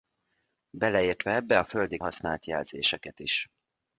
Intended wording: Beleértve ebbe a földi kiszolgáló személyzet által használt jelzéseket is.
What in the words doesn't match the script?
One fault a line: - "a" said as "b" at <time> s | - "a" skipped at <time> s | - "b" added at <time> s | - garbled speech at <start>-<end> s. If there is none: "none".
- "kiszolgáló személyzet által" skipped at 2.0 s